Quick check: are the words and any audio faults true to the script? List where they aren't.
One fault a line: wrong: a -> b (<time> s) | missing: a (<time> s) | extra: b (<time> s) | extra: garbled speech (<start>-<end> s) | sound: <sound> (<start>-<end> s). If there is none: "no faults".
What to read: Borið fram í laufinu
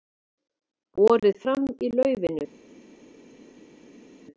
no faults